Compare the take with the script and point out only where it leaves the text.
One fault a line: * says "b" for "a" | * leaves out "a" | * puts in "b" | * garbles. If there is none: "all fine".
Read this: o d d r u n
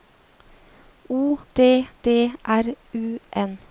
all fine